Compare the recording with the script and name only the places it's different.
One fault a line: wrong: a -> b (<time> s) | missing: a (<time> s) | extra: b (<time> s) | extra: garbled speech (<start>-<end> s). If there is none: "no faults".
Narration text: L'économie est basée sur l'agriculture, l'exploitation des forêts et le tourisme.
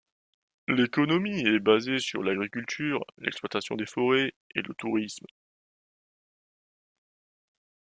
no faults